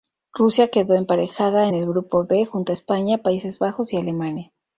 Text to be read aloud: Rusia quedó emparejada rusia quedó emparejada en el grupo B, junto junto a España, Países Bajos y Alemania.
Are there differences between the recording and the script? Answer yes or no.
yes